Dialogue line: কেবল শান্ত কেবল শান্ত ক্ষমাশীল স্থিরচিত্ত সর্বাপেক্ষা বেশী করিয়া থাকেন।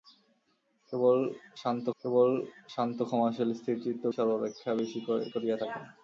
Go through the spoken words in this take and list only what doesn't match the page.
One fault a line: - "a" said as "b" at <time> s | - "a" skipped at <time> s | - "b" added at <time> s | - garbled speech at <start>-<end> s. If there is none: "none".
none